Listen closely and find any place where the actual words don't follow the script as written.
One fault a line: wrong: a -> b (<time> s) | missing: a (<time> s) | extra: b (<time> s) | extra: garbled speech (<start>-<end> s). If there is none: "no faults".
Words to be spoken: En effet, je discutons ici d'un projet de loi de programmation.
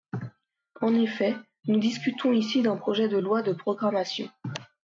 wrong: je -> nous (1.7 s)